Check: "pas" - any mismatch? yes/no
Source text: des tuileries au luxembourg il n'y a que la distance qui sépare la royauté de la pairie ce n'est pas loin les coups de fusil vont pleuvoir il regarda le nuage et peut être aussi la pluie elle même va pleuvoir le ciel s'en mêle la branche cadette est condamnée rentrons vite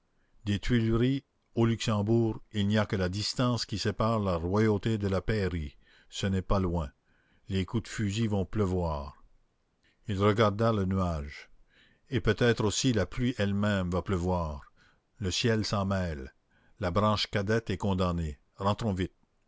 no